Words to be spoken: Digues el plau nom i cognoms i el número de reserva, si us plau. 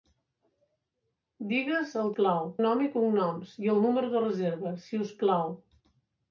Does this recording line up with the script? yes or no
yes